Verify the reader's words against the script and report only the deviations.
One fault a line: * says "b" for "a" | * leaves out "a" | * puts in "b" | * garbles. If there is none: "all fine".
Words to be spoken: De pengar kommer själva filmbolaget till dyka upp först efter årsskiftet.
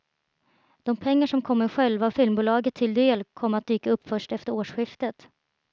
* puts in "som"
* puts in "del kommer att"